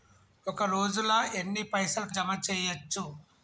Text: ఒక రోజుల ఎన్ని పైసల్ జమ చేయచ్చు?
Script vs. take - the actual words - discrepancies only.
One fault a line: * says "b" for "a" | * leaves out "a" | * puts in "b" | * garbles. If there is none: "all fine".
all fine